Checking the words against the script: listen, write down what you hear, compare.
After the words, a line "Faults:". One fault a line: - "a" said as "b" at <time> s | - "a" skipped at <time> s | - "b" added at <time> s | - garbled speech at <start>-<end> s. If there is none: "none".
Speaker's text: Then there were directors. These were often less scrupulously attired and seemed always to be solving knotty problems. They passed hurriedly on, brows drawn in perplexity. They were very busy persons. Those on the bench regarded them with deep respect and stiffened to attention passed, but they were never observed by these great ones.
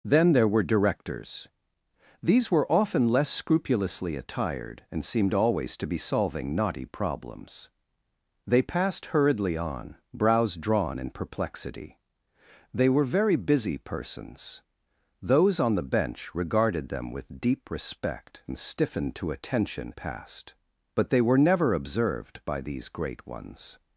Then there were directors. These were often less scrupulously attired and seemed always to be solving knotty problems. They passed hurriedly on, brows drawn in perplexity. They were very busy persons. Those on the bench regarded them with deep respect and stiffened to attention passed, but they were never observed by these great ones.
Faults:
none